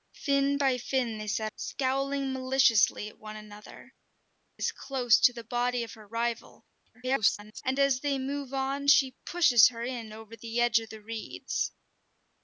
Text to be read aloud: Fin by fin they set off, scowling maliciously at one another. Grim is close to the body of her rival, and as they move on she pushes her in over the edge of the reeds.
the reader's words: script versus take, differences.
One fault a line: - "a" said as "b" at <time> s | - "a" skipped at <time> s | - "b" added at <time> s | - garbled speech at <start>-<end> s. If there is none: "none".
- "off" skipped at 1.5 s
- "Grim" skipped at 3.9 s
- garbled speech at 6.9-7.6 s